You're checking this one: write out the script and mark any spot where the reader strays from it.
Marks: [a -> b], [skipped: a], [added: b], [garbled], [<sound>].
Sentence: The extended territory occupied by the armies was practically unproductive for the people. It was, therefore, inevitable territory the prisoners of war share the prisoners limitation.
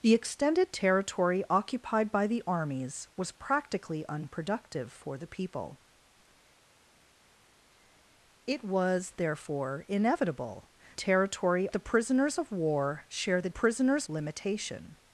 The extended territory occupied by the armies was practically unproductive for the people. It was, therefore, inevitable territory the prisoners of war share the prisoners limitation.